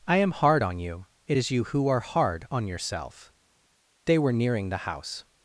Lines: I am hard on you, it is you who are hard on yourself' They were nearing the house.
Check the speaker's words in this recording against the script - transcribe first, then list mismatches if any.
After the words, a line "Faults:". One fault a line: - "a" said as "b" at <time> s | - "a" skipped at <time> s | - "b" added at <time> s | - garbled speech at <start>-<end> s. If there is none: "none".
I am hard on you, it is you who are hard on yourself' They were nearing the house.
Faults:
none